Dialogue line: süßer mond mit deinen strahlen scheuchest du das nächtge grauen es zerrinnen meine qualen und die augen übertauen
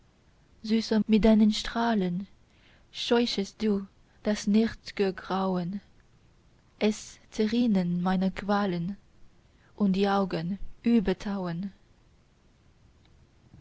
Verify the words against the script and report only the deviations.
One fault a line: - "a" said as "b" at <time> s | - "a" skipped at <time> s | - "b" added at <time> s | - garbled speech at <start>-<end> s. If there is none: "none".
- "mond" skipped at 1.0 s